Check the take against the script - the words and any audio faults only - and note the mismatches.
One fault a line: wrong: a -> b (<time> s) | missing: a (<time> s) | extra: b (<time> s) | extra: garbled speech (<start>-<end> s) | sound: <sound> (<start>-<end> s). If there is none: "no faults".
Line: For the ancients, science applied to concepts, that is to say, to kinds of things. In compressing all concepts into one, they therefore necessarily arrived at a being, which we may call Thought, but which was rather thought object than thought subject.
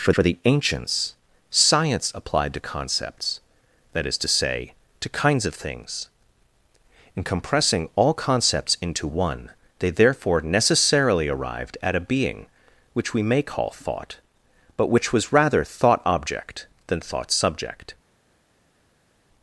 extra: for (0.1 s)